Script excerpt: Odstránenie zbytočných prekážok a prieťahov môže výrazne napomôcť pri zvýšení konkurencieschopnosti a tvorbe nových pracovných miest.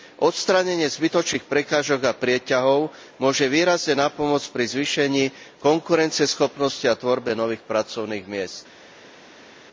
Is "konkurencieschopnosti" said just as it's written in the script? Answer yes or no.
yes